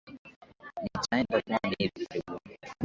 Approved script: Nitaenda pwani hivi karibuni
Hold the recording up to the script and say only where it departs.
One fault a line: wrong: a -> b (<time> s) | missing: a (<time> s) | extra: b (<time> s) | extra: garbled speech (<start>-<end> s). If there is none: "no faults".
no faults